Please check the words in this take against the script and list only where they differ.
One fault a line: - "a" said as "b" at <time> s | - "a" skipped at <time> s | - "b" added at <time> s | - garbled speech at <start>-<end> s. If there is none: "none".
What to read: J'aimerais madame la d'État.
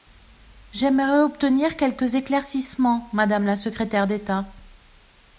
- "obtenir quelques éclaircissements" added at 1.2 s
- "secrétaire" added at 3.5 s